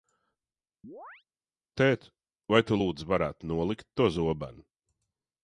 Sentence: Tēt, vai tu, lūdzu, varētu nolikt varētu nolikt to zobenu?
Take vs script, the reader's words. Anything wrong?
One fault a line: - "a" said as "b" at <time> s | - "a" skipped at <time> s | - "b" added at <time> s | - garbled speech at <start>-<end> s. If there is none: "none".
- "varētu nolikt" skipped at 3.9 s